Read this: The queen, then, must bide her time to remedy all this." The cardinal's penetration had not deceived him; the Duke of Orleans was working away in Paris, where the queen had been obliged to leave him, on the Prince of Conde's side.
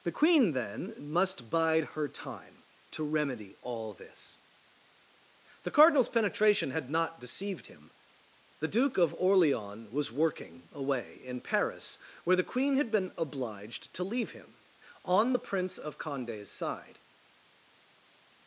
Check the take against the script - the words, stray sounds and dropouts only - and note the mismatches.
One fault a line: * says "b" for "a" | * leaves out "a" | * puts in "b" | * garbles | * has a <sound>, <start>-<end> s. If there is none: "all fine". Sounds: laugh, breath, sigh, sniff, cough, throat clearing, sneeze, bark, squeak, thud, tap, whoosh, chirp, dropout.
all fine